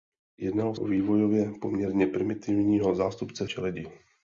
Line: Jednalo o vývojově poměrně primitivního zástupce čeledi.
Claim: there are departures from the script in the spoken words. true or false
false